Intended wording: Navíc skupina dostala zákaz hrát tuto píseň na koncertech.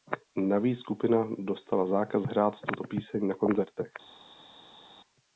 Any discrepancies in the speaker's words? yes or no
no